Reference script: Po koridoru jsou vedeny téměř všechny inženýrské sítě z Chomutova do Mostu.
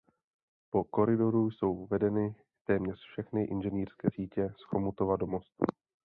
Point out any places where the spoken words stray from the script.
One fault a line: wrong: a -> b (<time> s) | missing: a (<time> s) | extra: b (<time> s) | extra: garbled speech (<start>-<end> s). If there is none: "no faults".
no faults